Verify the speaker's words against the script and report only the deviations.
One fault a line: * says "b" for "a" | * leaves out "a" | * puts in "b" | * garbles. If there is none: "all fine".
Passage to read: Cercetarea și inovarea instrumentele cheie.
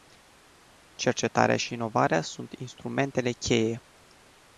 * puts in "sunt"